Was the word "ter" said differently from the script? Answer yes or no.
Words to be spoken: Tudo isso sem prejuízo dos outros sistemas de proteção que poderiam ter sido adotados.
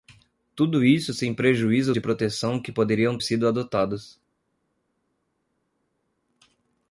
yes